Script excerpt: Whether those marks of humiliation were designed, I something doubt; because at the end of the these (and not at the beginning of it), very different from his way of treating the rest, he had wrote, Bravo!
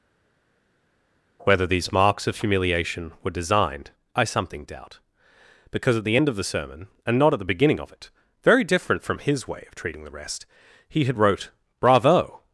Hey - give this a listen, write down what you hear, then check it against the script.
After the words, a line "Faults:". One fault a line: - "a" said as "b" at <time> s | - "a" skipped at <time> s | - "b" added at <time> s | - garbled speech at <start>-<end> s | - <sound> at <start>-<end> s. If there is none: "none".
Whether these marks of humiliation were designed, I something doubt; because at the end of the sermon (and not at the beginning of it), very different from his way of treating the rest, he had wrote, Bravo!
Faults:
- "those" said as "these" at 1.6 s
- "these" said as "sermon" at 6.4 s